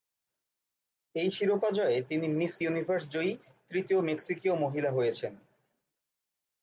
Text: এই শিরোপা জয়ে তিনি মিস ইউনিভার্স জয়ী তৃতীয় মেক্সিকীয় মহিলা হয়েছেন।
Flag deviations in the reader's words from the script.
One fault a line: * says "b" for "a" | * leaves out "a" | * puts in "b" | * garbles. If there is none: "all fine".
all fine